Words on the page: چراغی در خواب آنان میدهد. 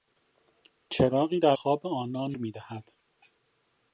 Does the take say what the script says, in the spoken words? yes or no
yes